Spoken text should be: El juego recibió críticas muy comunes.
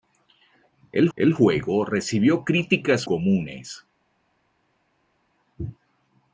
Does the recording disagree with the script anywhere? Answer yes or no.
yes